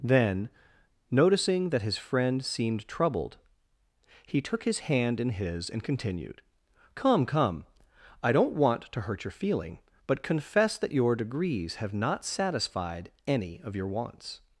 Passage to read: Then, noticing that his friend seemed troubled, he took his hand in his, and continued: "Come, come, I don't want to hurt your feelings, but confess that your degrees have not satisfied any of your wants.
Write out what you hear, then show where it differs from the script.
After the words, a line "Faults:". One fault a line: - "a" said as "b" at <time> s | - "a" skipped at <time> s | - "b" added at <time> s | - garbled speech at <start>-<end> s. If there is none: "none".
Then, noticing that his friend seemed troubled, he took his hand in his, and continued: "Come, come, I don't want to hurt your feeling, but confess that your degrees have not satisfied any of your wants.
Faults:
- "feelings" said as "feeling" at 9.3 s